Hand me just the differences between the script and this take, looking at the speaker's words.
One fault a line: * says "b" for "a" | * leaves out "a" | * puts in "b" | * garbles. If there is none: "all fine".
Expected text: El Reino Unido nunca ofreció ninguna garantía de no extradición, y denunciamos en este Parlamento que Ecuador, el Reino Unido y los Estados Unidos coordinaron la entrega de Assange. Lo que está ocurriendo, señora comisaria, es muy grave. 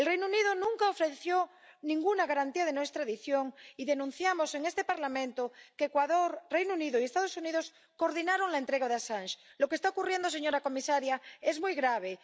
all fine